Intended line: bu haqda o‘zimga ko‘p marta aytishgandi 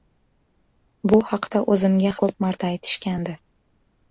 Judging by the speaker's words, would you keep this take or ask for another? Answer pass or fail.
pass